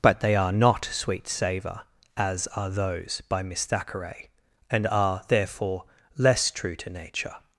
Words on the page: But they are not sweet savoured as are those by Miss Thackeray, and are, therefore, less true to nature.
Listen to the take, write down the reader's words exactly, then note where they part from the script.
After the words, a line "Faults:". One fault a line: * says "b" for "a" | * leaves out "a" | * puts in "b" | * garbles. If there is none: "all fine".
But they are not sweet savour as are those by Miss Thackeray, and are, therefore, less true to nature.
Faults:
* says "savour" for "savoured"